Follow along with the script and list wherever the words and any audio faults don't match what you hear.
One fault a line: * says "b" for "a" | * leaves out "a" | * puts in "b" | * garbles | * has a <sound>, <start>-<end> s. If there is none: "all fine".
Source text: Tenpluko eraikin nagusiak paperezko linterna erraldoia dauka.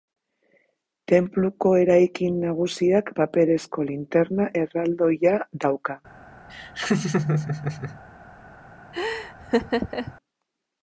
* has a laugh, 6.5-8.0 s
* has a laugh, 8.9-10.1 s